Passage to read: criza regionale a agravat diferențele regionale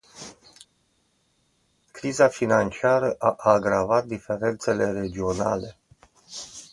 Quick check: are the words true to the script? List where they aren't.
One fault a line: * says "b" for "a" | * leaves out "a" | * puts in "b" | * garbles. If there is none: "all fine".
* says "financiară" for "regionale"